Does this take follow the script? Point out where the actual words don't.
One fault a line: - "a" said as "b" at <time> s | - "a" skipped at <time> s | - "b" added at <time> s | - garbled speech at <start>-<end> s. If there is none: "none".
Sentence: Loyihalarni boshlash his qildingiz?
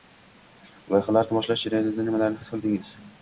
- "jarayonida nimalarni" added at 1.7 s